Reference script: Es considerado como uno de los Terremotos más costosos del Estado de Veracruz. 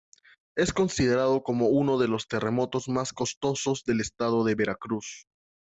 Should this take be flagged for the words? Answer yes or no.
no